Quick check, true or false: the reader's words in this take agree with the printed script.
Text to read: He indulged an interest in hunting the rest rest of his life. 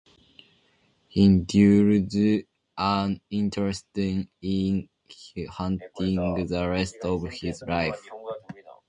false